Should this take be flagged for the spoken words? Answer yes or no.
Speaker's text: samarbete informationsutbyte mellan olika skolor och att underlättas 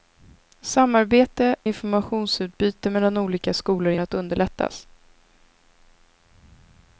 no